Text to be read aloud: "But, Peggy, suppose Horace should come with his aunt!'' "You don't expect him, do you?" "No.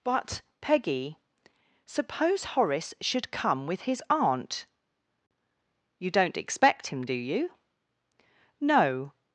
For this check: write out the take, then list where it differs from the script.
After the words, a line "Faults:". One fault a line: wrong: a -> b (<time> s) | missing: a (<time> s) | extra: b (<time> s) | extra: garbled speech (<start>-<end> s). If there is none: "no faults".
"But, Peggy, suppose Horace should come with his aunt!'' "You don't expect him, do you?" "No.
Faults:
no faults